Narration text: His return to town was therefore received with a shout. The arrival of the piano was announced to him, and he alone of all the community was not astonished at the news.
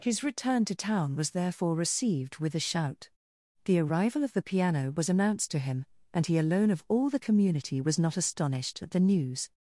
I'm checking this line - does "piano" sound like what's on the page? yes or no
yes